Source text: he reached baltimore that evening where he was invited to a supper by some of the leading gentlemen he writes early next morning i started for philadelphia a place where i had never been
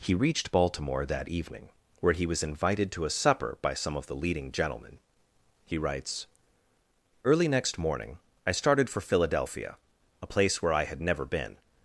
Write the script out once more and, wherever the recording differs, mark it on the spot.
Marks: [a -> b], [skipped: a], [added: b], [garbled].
he reached baltimore that evening where he was invited to a supper by some of the leading gentlemen he writes early next morning i started for philadelphia a place where i had never been